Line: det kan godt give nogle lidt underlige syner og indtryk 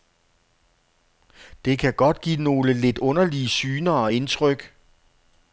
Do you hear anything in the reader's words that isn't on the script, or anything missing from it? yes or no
no